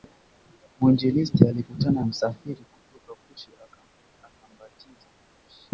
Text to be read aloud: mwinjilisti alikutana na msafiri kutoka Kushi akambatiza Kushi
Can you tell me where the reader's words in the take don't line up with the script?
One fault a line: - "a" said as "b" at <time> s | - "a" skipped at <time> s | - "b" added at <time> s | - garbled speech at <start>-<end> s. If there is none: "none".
- "na" skipped at 2.0 s